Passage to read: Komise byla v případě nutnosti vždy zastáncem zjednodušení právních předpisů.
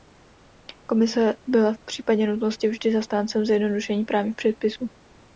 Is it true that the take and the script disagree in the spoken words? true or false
false